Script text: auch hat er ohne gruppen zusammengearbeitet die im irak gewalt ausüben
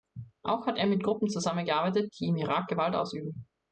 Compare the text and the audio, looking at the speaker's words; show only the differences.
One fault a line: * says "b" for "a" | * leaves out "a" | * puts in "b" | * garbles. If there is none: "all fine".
* says "mit" for "ohne"